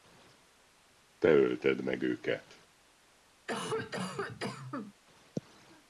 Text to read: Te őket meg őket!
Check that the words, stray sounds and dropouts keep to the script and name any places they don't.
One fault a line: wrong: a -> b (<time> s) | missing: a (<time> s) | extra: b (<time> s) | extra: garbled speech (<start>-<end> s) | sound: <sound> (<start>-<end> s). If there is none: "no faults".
wrong: őket -> ölted (1.3 s)
sound: cough (3.5-4.9 s)